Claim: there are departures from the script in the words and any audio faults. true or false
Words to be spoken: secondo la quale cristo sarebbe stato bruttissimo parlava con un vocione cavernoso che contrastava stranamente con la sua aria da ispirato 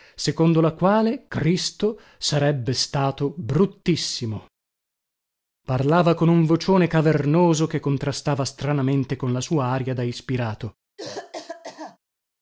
true